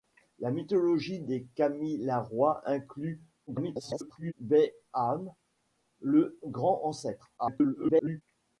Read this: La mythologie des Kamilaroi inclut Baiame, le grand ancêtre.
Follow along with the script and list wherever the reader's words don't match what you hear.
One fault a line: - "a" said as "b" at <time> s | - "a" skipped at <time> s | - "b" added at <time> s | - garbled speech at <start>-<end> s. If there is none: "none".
- garbled speech at 3.5-4.3 s
- garbled speech at 7.4-8.2 s